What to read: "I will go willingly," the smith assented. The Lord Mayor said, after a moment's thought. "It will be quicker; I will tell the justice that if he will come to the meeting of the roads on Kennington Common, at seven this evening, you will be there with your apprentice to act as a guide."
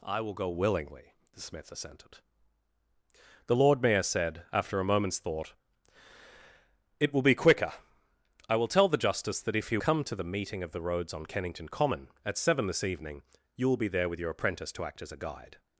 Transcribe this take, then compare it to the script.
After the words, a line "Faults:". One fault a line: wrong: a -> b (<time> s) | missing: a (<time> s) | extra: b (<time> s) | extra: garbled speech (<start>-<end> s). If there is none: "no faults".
"I will go willingly," the smith assented. The Lord Mayor said, after a moment's thought. "It will be quicker; I will tell the justice that if he come to the meeting of the roads on Kennington Common, at seven this evening, you will be there with your apprentice to act as a guide."
Faults:
missing: will (9.8 s)